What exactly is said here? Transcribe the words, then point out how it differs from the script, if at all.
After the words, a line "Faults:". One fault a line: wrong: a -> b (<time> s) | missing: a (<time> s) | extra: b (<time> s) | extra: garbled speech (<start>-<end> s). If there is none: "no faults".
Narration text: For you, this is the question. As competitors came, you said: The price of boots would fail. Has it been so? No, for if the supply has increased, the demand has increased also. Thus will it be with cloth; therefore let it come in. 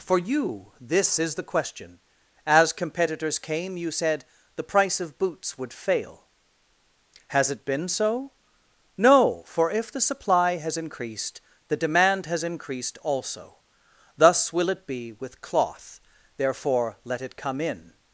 For you, this is the question. As competitors came, you said: The price of boots would fail. Has it been so? No, for if the supply has increased, the demand has increased also. Thus will it be with cloth; therefore let it come in.
Faults:
no faults